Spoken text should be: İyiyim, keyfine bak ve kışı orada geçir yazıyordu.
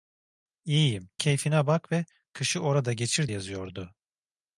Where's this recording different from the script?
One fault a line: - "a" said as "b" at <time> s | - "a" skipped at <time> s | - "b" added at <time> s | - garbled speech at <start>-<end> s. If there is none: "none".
none